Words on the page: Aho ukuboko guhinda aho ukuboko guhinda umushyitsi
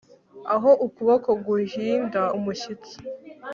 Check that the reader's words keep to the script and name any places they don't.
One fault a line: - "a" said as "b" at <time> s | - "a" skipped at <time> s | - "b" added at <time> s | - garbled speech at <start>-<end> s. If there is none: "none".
- "aho ukuboko guhinda" skipped at 2.2 s